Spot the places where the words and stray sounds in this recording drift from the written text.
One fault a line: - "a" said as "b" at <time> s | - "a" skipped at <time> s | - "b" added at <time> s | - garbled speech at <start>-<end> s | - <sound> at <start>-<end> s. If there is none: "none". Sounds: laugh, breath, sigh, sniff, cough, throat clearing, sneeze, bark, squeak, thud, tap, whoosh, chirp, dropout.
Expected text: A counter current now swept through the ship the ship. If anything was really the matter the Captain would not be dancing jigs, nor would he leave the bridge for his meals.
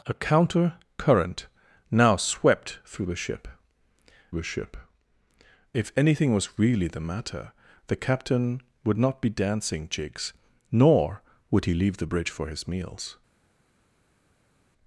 none